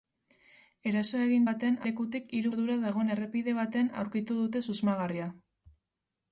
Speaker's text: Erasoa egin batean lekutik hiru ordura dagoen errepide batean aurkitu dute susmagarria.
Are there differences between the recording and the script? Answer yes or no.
no